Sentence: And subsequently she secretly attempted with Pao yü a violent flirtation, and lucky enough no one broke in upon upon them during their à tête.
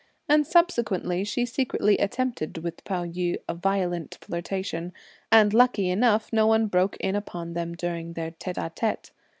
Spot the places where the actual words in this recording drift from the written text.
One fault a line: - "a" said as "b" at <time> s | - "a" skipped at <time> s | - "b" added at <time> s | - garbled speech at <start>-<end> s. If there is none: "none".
- "upon" skipped at 7.5 s
- "tête" added at 8.3 s